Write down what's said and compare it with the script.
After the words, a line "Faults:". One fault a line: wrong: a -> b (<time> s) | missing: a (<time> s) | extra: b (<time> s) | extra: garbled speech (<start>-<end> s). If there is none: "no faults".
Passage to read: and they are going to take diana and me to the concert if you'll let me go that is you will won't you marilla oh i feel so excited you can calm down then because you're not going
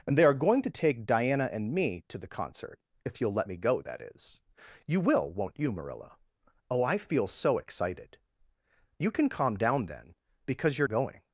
and they are going to take diana and me to the concert if you'll let me go that is you will won't you marilla oh i feel so excited you can calm down then because you're going
Faults:
missing: not (10.9 s)